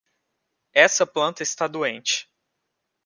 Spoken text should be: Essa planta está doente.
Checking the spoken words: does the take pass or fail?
pass